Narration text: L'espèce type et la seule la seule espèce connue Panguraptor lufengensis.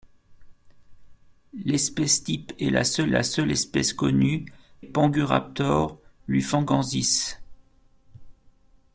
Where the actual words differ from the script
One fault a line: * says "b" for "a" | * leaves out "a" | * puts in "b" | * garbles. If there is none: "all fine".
all fine